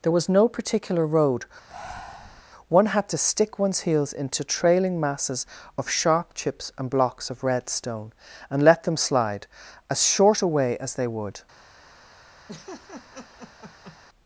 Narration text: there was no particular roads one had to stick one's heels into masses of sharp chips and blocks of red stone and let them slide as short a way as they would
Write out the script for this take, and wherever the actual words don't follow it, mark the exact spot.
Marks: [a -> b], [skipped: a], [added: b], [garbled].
there was no particular [roads -> road] one had to stick one's heels into [added: trailing] masses of sharp chips and blocks of red stone and let them slide as short a way as they would